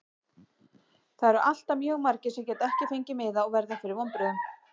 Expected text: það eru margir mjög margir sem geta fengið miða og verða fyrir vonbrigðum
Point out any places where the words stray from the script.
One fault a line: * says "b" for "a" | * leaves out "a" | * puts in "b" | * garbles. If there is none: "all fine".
* says "alltaf" for "margir"
* puts in "ekki"